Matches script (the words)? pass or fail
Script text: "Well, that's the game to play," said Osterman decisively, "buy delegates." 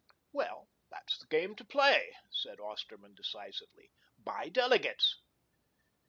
pass